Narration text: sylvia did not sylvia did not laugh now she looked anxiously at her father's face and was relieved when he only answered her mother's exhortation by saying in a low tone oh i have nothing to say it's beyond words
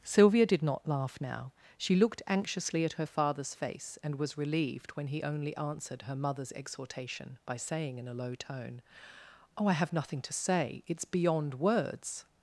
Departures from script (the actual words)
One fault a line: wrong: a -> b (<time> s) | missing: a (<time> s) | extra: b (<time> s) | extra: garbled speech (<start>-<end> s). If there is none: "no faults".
missing: sylvia did not (0.9 s)